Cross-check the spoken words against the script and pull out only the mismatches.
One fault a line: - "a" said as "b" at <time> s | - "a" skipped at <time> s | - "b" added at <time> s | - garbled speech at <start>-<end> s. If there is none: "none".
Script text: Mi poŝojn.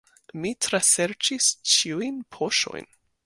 - "traserĉis ĉiujn" added at 0.7 s